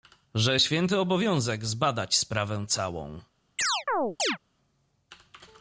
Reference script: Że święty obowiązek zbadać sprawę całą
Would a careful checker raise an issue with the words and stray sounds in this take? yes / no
yes